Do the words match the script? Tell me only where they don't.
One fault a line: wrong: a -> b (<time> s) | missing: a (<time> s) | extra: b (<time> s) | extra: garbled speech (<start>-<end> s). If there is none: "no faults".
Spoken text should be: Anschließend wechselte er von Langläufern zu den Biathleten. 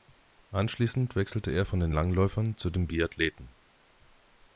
extra: den (1.8 s)